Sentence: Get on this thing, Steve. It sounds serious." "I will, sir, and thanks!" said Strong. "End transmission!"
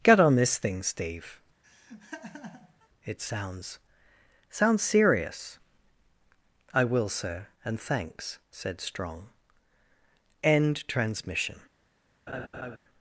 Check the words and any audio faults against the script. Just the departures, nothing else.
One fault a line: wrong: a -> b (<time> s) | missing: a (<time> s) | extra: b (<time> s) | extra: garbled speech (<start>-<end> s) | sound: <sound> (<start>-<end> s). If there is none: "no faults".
sound: laugh (1.6-2.9 s)
extra: sounds (4.5 s)
sound: laugh (12.3-12.8 s)